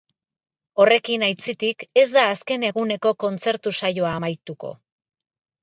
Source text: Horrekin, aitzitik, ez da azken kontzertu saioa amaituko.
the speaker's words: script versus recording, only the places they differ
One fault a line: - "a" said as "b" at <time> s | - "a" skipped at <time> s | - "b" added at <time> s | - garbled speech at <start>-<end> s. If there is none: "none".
- "eguneko" added at 2.7 s